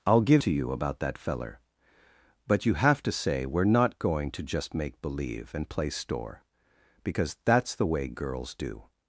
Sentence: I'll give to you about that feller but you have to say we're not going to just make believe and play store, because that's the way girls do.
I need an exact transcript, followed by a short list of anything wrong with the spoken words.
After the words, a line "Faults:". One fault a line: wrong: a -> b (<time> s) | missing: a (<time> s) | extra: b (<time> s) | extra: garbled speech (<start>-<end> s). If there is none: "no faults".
I'll give to you about that feller but you have to say we're not going to just make believe and play store, because that's the way girls do.
Faults:
no faults